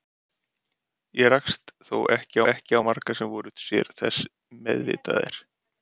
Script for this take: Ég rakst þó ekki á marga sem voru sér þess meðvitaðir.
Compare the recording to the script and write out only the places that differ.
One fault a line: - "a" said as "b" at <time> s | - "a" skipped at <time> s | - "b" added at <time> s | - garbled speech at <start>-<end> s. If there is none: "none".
- "ekki" added at 2.5 s